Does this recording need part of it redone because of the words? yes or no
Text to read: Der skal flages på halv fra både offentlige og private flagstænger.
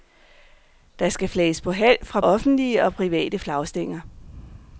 yes